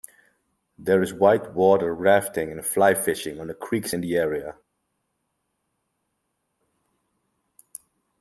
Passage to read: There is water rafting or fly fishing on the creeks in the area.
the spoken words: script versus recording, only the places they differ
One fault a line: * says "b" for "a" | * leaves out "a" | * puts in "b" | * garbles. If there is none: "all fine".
* puts in "white"
* says "and" for "or"